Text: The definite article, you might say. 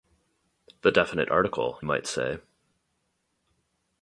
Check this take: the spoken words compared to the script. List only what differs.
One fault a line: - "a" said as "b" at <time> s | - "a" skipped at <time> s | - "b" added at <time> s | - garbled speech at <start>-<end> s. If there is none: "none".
- "you" skipped at 1.8 s